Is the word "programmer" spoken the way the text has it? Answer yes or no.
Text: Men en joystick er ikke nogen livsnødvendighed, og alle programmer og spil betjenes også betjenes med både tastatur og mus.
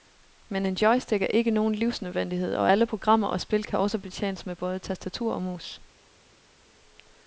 yes